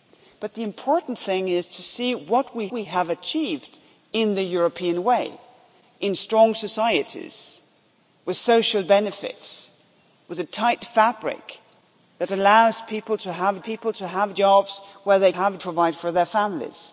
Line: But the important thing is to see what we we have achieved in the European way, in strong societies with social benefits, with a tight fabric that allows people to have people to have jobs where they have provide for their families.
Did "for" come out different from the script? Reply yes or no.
no